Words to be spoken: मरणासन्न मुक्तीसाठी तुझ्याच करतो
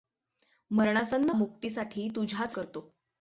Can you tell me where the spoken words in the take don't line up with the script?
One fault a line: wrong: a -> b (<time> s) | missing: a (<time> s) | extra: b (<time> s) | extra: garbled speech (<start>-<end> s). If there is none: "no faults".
no faults